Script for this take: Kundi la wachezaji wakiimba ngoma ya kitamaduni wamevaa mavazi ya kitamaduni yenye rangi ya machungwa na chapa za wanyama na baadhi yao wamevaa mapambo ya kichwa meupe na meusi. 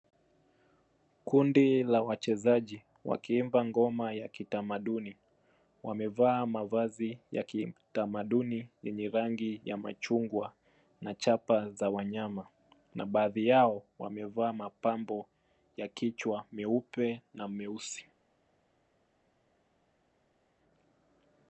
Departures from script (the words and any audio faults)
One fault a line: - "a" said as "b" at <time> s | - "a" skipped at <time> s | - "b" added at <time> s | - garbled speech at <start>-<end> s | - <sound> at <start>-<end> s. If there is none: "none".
none